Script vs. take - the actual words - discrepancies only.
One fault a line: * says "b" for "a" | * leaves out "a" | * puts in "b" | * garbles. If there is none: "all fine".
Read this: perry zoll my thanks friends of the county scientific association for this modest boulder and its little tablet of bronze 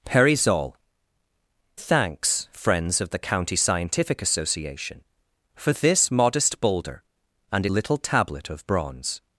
* leaves out "my"
* leaves out "its"